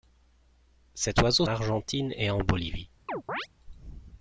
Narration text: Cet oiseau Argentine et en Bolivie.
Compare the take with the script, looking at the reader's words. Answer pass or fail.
pass